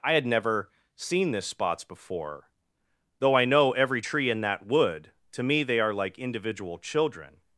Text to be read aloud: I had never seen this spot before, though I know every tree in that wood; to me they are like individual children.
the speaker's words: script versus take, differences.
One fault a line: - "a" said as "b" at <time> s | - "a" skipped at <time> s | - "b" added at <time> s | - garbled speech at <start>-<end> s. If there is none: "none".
- "spot" said as "spots" at 1.4 s